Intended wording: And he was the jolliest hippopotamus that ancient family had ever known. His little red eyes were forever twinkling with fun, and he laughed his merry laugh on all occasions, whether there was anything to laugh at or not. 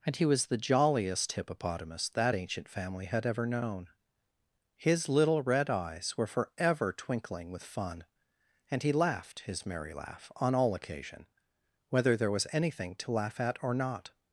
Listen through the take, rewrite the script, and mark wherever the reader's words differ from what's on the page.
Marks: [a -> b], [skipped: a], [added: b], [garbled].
And he was the jolliest hippopotamus that ancient family had ever known. His little red eyes were forever twinkling with fun, and he laughed his merry laugh on all [occasions, -> occasion] whether there was anything to laugh at or not.